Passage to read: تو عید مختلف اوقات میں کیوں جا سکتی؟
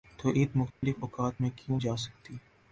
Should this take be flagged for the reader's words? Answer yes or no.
no